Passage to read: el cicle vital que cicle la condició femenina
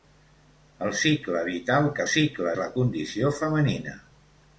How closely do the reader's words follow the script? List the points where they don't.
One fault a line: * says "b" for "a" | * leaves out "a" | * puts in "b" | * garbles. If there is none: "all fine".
all fine